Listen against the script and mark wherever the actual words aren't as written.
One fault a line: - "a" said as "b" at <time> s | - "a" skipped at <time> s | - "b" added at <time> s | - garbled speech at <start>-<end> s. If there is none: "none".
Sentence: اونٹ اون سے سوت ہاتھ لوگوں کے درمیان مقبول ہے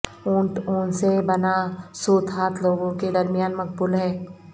- "بنا" added at 1.3 s